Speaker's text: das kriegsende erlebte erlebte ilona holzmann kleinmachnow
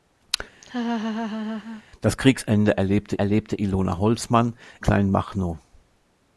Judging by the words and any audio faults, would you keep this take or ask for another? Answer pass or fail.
fail